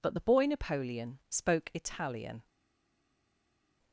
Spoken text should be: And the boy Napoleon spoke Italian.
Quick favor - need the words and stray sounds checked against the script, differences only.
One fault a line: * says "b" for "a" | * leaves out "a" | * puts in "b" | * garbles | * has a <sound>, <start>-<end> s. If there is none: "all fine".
* says "But" for "And"